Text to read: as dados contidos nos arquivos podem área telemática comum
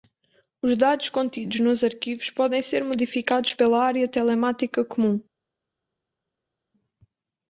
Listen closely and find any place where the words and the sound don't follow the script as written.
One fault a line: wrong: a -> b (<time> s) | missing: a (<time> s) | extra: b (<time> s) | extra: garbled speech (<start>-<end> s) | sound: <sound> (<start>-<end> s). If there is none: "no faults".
wrong: as -> os (0.6 s)
extra: ser modificados pela (2.6 s)